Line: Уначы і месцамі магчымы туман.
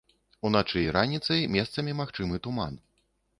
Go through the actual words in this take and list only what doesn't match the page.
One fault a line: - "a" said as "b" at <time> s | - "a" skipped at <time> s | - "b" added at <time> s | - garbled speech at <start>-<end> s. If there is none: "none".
- "раніцай" added at 1.0 s